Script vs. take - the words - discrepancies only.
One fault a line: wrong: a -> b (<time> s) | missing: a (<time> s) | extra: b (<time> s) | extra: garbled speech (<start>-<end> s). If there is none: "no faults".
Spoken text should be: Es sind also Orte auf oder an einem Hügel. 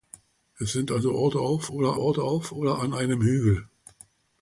extra: Orte auf oder (2.0 s)